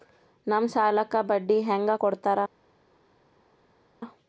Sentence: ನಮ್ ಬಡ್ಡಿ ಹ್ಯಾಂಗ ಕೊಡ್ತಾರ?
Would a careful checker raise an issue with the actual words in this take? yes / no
yes